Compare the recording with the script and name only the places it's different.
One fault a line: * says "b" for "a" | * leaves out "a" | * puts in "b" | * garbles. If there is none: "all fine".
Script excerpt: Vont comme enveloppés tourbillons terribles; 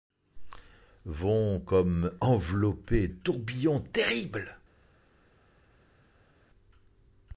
all fine